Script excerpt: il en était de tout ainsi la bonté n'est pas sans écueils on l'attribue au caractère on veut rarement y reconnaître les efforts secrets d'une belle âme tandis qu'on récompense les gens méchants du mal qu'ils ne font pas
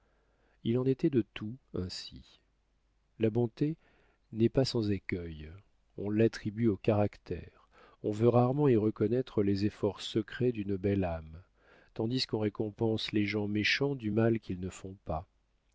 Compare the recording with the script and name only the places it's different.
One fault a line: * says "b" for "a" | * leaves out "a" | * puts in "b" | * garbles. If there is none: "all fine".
all fine